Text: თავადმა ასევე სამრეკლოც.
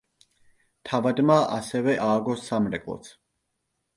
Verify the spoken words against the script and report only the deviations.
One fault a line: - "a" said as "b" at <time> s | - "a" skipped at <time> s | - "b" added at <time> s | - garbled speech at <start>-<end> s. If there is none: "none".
- "ააგო" added at 2.0 s